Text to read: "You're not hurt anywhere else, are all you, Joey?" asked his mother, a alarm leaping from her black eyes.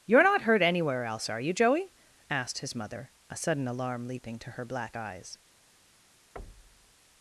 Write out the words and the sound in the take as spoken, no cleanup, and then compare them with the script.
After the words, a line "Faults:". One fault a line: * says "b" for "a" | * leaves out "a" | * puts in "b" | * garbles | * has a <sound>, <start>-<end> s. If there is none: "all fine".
"You're not hurt anywhere else, are you, Joey?" asked his mother, a sudden alarm leaping to her black eyes.
Faults:
* leaves out "all"
* puts in "sudden"
* says "to" for "from"
* has a thud, 6.4-6.9 s